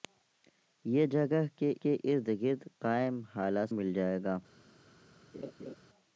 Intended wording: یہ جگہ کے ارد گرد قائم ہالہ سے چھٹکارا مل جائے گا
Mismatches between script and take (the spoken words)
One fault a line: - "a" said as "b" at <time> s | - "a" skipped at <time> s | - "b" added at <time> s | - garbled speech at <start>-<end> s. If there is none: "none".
- "کے" added at 1.8 s
- "سے چھٹکارا" skipped at 3.7 s